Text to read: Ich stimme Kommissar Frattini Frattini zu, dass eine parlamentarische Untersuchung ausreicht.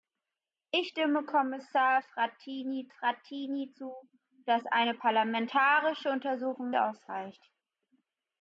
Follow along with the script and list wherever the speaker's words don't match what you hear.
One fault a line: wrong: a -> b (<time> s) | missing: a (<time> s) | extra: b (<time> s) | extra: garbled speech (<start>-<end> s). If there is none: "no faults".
no faults